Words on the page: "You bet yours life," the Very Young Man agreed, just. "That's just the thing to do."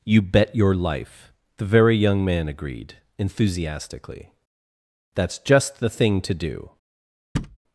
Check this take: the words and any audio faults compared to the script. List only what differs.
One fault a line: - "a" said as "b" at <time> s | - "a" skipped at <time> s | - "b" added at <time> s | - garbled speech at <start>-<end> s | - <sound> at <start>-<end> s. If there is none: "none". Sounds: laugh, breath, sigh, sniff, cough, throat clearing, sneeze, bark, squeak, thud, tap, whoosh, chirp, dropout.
- "yours" said as "your" at 0.6 s
- "just" said as "enthusiastically" at 3.2 s
- thud at 7.3-7.6 s